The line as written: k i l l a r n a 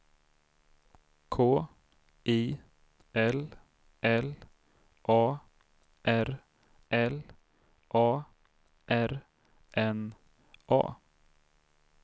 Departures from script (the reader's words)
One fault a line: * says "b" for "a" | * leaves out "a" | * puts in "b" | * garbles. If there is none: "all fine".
* puts in "l a r"